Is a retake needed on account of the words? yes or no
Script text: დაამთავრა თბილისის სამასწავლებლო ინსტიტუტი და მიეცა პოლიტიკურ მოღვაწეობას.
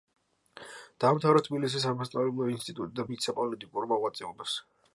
no